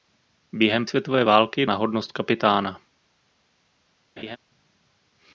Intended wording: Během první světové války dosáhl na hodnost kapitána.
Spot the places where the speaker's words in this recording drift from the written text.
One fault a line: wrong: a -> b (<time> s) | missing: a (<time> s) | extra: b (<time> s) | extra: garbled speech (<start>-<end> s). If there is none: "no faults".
missing: první (0.8 s)
missing: dosáhl (1.6 s)